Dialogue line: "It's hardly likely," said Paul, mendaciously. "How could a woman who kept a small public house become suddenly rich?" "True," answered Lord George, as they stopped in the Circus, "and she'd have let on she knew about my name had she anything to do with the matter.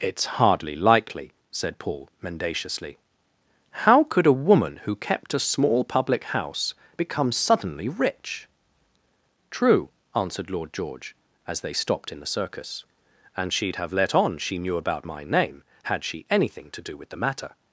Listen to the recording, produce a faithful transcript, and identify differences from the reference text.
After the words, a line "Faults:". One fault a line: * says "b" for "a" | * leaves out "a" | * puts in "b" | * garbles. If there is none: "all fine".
"It's hardly likely," said Paul, mendaciously. "How could a woman who kept a small public house become suddenly rich?" "True," answered Lord George, as they stopped in the Circus, "and she'd have let on she knew about my name had she anything to do with the matter.
Faults:
all fine